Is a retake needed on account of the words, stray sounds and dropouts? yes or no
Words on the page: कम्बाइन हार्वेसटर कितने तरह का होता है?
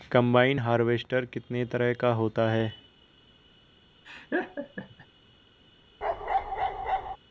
yes